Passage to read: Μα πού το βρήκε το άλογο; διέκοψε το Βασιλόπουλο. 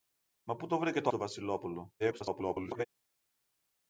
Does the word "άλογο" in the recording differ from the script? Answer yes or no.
yes